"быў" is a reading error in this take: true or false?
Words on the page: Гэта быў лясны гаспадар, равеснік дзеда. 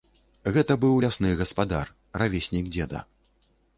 false